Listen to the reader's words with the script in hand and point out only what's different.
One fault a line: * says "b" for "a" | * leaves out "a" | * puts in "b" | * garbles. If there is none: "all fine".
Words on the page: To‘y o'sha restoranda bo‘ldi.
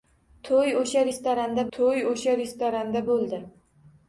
* puts in "to‘y o'sha restoranda"